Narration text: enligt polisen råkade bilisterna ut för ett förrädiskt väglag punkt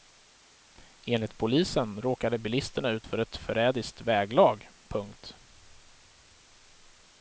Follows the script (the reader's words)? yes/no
yes